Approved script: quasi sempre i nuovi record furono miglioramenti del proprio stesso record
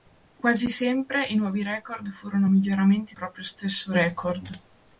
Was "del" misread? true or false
true